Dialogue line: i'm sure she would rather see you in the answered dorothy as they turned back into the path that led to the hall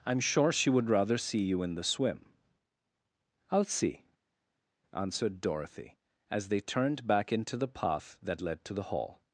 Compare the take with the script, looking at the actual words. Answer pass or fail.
fail